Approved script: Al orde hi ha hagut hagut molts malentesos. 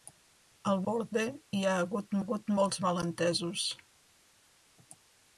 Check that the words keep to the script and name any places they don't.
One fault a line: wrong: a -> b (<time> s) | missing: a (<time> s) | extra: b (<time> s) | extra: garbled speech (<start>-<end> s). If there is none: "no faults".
no faults